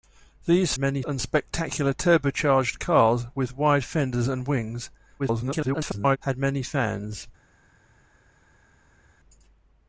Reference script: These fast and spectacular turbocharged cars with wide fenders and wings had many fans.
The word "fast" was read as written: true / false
false